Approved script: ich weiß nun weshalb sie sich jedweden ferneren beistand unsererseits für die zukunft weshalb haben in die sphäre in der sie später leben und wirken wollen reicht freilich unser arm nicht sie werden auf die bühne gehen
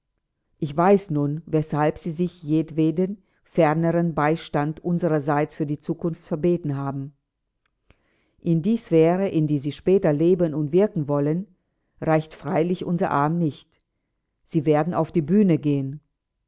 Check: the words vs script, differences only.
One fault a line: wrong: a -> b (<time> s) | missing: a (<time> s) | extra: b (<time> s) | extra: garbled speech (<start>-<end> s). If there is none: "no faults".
wrong: weshalb -> verbeten (6.2 s)